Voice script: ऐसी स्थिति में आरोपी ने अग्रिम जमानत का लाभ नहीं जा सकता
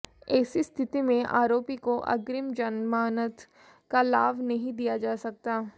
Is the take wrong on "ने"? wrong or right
wrong